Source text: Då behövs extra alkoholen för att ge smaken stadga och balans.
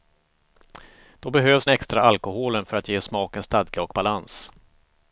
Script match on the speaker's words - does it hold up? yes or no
yes